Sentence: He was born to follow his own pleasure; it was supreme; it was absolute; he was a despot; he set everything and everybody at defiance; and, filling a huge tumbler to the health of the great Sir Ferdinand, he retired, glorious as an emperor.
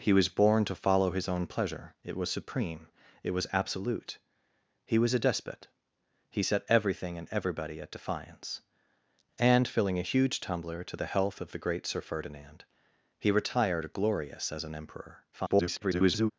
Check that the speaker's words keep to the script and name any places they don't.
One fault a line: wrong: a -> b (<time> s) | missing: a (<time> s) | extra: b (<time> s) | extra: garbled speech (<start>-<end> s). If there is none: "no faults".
extra: garbled speech (15.3-16.3 s)